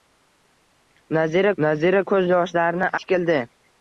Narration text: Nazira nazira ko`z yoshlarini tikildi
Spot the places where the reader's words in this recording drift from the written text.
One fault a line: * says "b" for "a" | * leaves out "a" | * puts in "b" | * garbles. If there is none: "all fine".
all fine